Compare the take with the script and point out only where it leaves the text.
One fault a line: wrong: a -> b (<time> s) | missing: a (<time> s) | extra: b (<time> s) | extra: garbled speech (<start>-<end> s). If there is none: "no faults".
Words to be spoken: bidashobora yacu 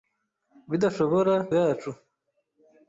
no faults